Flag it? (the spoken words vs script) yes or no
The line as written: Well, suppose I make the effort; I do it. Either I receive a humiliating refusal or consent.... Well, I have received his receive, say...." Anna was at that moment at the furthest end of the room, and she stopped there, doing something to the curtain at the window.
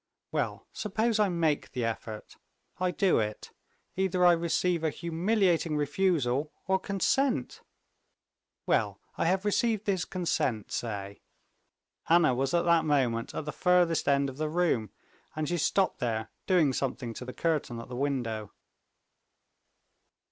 yes